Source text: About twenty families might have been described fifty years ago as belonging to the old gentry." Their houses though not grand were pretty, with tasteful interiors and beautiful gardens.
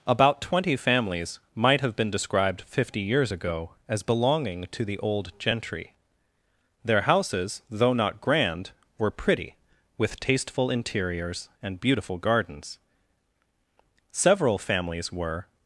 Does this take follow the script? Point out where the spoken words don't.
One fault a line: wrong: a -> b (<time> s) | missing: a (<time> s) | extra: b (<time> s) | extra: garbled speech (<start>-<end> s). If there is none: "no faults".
extra: Several families were (14.1 s)